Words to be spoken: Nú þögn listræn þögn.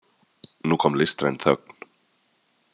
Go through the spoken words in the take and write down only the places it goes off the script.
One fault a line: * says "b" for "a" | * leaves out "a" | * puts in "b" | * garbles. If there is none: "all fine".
* says "kom" for "þögn"